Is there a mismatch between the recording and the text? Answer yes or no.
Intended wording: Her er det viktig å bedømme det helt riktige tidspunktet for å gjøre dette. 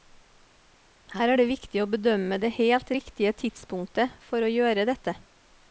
no